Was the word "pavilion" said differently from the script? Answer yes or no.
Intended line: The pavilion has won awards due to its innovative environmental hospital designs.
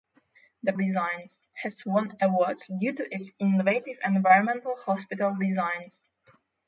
yes